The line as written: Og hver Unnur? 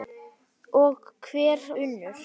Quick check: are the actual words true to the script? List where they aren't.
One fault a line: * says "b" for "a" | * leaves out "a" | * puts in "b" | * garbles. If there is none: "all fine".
all fine